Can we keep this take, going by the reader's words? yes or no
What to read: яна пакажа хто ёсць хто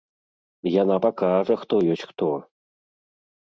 yes